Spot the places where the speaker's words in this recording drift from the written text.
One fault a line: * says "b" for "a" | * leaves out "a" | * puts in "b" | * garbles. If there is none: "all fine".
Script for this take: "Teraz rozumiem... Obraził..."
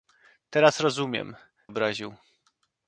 all fine